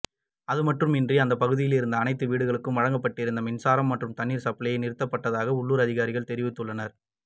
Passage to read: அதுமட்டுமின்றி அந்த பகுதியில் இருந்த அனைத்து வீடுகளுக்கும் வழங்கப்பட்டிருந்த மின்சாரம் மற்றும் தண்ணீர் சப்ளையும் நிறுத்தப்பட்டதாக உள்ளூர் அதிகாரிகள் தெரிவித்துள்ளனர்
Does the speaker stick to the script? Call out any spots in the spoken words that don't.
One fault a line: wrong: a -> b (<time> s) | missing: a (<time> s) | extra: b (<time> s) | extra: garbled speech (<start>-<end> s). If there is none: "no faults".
no faults